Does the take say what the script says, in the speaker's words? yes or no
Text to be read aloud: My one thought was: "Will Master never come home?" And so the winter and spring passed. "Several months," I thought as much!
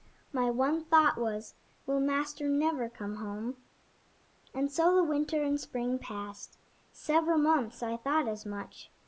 yes